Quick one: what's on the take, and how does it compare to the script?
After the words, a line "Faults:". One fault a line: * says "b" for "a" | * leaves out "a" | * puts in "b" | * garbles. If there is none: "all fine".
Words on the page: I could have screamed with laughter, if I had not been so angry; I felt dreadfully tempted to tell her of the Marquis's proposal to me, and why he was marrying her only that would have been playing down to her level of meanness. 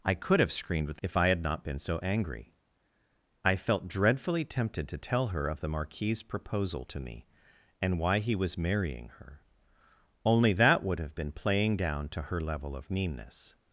I could have screamed with if I had not been so angry; I felt dreadfully tempted to tell her of the Marquis's proposal to me, and why he was marrying her only that would have been playing down to her level of meanness.
Faults:
* leaves out "laughter"